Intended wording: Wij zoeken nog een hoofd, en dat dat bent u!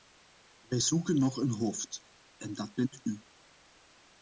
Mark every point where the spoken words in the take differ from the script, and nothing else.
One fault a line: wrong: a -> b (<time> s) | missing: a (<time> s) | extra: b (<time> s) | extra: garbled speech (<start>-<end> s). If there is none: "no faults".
missing: dat (2.7 s)